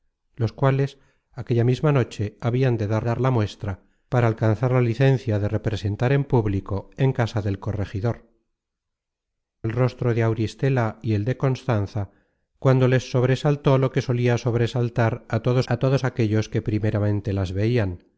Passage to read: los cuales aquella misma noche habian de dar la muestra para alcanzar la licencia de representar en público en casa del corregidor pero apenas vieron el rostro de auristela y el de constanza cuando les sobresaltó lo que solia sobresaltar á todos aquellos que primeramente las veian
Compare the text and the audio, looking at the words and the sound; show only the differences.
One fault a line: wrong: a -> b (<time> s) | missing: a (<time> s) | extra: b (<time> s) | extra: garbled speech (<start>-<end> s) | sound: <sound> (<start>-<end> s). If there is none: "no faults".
extra: dar (3.0 s)
missing: pero apenas vieron (8.3 s)
extra: á todos (15.7 s)